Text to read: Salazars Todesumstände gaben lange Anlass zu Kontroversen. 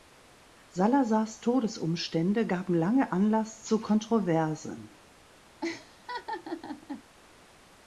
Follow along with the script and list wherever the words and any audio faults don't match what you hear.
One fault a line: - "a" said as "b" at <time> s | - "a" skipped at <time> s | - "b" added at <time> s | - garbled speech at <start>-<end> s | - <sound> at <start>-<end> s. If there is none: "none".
- laugh at 5.6-7.0 s